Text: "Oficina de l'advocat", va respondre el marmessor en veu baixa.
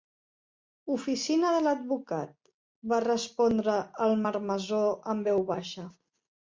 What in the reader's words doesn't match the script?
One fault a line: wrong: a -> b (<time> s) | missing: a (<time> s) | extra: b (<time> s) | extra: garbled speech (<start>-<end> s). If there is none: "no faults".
no faults